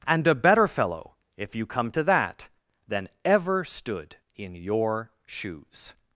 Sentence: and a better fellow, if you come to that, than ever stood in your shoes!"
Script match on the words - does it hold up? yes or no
yes